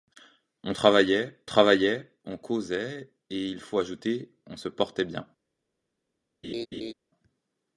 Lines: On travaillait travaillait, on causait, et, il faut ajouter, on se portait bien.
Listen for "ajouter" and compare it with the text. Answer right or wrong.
right